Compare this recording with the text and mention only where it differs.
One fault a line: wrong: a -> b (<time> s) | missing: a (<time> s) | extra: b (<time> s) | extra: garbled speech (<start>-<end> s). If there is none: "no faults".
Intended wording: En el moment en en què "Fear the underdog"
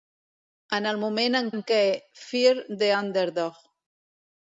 no faults